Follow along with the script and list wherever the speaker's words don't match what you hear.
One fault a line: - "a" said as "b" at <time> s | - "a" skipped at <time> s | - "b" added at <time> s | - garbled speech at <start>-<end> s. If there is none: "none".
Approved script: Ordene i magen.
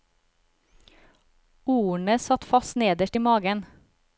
- "satt fast nederst" added at 2.2 s